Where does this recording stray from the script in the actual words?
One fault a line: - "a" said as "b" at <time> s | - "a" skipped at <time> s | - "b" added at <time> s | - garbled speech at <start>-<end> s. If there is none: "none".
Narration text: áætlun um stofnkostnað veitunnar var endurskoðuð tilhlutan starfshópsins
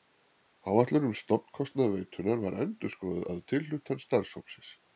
- "að" added at 3.3 s